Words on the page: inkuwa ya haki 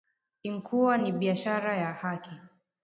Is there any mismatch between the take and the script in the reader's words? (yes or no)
yes